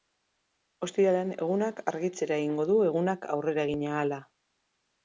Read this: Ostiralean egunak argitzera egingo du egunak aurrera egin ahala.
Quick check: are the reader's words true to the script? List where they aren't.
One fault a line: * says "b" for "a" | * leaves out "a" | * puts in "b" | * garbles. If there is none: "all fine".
all fine